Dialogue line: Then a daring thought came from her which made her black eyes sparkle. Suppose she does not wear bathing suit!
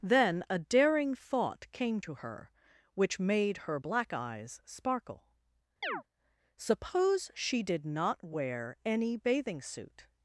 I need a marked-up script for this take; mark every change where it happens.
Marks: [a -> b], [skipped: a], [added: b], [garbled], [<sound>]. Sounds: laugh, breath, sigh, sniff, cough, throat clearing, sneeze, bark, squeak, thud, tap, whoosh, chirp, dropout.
Then a daring thought came [from -> to] her which made her black eyes sparkle. [chirp] Suppose she [does -> did] not wear [added: any] bathing suit!